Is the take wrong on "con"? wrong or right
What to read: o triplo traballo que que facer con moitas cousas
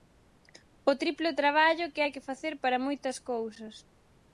wrong